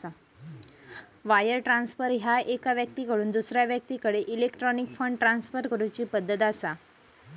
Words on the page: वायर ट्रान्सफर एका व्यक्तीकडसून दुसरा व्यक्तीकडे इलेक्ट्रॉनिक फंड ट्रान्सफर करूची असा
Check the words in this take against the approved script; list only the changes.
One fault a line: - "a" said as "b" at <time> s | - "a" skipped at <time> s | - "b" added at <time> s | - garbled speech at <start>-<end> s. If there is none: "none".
- "ह्या" added at 2.1 s
- "पद्धत" added at 6.0 s